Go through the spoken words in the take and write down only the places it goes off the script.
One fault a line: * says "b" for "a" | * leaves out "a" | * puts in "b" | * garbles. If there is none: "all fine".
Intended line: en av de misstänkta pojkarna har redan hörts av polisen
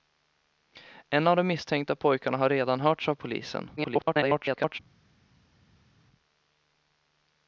* garbles